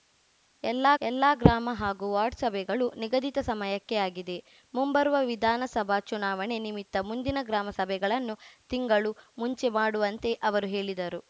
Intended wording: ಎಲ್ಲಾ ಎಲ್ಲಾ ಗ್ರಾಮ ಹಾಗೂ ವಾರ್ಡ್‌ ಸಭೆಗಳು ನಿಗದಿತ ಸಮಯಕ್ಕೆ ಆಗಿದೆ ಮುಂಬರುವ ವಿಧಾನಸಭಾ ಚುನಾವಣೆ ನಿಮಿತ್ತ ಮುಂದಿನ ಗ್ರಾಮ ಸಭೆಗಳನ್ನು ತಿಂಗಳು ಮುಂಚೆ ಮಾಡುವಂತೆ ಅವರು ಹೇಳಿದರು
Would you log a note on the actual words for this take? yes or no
no